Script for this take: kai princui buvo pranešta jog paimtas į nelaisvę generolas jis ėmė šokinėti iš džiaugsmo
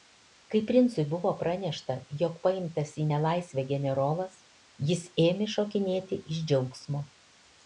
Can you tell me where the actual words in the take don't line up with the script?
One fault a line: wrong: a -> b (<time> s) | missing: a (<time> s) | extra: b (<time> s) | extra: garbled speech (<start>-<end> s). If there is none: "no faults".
no faults